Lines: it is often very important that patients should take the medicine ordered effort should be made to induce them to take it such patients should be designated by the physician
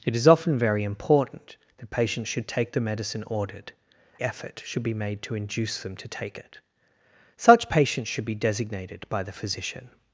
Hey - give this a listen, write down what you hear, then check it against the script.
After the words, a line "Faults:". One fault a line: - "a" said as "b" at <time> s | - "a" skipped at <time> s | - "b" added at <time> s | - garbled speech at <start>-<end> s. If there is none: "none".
it is often very important that patients should take the medicine ordered effort should be made to induce them to take it such patients should be designated by the physician
Faults:
none